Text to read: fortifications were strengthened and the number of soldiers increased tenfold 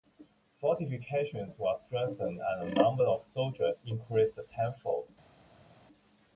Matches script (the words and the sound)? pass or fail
pass